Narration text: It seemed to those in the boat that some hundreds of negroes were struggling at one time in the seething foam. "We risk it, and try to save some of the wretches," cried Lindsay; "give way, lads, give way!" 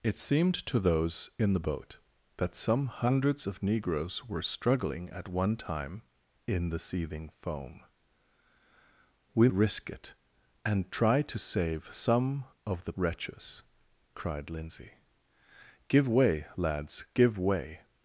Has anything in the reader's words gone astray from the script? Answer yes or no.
no